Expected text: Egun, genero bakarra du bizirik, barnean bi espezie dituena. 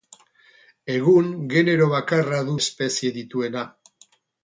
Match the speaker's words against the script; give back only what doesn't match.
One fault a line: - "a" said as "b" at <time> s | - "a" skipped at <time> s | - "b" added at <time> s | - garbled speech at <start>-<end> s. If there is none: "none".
- "bizirik barnean bi" skipped at 2.5 s